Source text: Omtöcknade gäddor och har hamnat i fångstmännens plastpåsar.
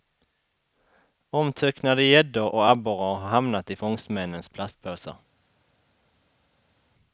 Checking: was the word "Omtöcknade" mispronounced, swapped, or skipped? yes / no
no